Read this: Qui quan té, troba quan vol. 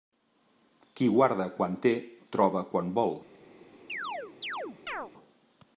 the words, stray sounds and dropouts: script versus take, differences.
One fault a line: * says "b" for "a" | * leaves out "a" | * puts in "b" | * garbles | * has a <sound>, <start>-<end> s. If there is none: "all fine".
* puts in "guarda"
* has a chirp, 3.9-5.1 s